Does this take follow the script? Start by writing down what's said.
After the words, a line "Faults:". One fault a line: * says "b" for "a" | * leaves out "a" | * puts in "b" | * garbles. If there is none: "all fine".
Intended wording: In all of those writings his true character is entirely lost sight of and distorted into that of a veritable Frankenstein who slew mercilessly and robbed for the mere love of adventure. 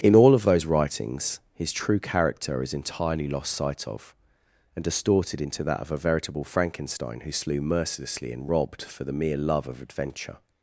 In all of those writings his true character is entirely lost sight of and distorted into that of a veritable Frankenstein who slew mercilessly and robbed for the mere love of adventure.
Faults:
all fine